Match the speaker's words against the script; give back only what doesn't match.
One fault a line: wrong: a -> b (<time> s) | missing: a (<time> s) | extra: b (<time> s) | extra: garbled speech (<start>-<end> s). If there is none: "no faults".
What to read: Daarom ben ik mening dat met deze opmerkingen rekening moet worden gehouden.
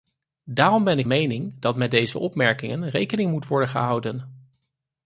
no faults